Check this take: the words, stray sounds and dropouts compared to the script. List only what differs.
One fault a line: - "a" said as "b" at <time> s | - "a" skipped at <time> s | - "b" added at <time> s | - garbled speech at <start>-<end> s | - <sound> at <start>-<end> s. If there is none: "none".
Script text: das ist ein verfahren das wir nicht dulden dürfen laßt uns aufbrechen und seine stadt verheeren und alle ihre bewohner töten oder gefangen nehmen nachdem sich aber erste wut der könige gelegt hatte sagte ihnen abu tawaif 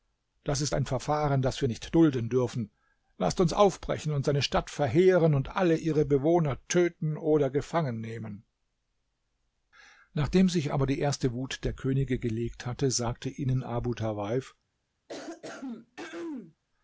- "die" added at 10.9 s
- throat clearing at 15.1-16.6 s